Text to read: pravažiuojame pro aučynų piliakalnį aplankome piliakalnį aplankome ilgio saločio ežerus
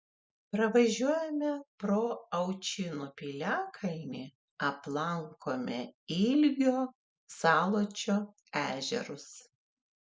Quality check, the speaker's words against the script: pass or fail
fail